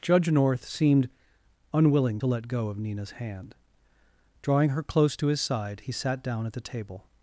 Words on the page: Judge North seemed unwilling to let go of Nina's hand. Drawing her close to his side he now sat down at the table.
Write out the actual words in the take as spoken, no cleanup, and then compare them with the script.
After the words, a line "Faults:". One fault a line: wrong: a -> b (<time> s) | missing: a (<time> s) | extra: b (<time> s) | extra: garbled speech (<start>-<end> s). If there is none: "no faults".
Judge North seemed unwilling to let go of Nina's hand. Drawing her close to his side he sat down at the table.
Faults:
missing: now (5.9 s)